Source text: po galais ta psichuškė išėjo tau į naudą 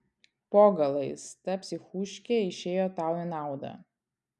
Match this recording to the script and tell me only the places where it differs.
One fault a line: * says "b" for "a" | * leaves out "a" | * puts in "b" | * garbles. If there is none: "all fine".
all fine